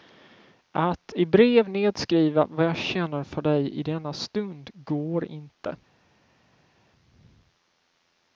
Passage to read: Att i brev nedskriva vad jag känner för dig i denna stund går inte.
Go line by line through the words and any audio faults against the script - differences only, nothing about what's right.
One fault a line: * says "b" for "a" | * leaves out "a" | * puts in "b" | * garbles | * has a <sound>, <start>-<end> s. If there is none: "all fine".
all fine